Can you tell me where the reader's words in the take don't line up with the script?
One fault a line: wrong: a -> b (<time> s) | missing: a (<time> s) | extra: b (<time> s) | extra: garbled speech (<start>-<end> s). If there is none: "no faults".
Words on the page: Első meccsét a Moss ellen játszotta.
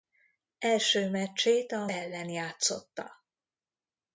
missing: Moss (1.9 s)